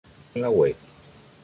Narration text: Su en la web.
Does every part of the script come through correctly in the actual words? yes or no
yes